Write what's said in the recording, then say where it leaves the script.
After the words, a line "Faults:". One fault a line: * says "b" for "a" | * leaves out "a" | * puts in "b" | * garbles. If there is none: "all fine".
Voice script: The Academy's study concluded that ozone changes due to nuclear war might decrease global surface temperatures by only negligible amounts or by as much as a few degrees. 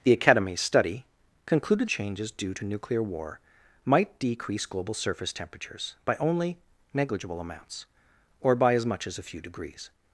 The Academy's study concluded changes due to nuclear war might decrease global surface temperatures by only negligible amounts or by as much as a few degrees.
Faults:
* leaves out "that ozone"